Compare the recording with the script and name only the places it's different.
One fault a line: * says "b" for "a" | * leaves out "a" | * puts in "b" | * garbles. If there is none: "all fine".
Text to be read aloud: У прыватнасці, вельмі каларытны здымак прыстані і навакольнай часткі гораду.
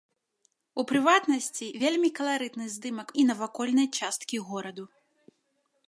* leaves out "прыстані"